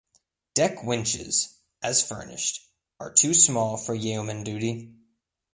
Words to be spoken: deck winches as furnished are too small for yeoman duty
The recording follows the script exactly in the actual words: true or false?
true